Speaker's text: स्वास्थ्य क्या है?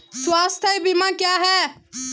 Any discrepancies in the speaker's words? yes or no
yes